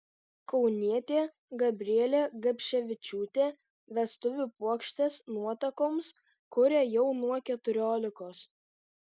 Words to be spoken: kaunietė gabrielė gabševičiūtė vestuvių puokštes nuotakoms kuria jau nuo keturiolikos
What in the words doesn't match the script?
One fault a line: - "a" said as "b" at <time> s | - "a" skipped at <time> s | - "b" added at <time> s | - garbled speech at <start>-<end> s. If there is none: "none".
none